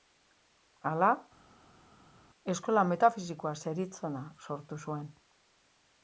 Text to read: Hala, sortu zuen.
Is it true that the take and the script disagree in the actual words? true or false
true